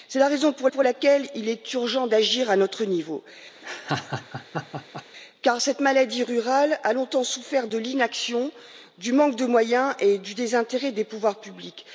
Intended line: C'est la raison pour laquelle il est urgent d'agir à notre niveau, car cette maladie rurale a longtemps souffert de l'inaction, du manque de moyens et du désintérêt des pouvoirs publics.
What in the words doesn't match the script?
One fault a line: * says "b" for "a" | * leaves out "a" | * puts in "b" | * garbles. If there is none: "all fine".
* puts in "pour"